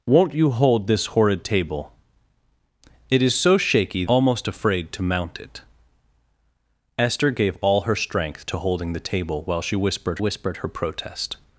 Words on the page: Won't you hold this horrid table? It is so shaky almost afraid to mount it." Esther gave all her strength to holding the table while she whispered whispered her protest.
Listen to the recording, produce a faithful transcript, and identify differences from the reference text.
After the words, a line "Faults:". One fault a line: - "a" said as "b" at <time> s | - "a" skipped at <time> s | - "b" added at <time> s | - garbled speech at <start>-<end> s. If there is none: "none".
Won't you hold this horrid table? It is so shaky almost afraid to mount it." Esther gave all her strength to holding the table while she whispered whispered her protest.
Faults:
none